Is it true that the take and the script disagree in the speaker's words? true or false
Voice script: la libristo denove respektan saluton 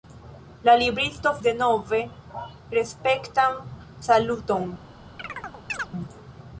false